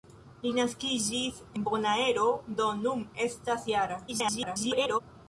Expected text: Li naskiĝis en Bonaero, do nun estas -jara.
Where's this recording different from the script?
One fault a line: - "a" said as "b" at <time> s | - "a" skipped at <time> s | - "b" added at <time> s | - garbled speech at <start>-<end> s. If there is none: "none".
- "en" skipped at 1.4 s
- garbled speech at 4.1-5.0 s